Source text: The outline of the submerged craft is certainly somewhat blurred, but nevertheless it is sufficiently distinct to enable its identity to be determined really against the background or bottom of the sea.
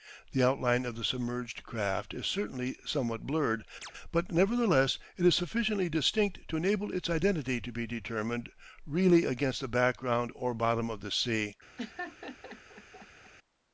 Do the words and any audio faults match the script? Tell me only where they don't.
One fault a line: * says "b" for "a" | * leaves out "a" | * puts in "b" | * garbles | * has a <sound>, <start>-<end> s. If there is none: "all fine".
* has a chirp, 3.8-3.9 s
* has a laugh, 11.8-13.3 s